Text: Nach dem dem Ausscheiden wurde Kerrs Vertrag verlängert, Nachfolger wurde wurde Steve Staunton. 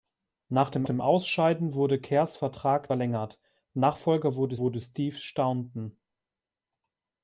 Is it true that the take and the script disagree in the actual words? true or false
false